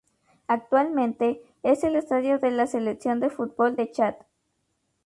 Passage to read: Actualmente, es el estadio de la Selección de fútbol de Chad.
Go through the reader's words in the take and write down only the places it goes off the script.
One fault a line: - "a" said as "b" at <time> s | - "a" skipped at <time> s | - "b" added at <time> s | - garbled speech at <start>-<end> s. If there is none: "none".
none